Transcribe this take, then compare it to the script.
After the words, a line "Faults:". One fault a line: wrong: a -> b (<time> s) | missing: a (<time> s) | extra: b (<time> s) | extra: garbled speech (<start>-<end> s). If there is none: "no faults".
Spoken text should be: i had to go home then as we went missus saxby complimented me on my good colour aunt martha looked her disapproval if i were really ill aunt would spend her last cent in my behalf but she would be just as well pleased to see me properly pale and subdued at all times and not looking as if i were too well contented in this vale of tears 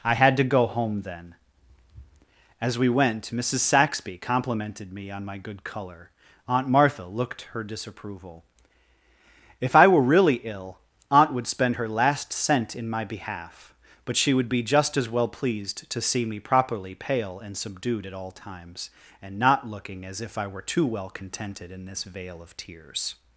i had to go home then as we went missus saxby complimented me on my good colour aunt martha looked her disapproval if i were really ill aunt would spend her last cent in my behalf but she would be just as well pleased to see me properly pale and subdued at all times and not looking as if i were too well contented in this vale of tears
Faults:
no faults